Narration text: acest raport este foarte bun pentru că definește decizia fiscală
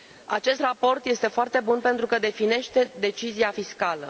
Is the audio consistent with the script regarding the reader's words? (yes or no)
yes